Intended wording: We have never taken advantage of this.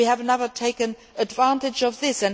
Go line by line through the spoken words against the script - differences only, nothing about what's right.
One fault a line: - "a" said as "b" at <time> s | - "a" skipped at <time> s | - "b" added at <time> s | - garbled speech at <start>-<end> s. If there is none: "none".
none